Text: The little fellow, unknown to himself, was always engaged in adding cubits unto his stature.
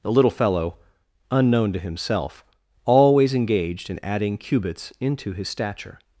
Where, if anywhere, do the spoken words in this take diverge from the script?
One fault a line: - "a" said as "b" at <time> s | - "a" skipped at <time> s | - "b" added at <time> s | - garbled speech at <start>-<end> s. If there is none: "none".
- "was" skipped at 2.4 s
- "unto" said as "into" at 5.0 s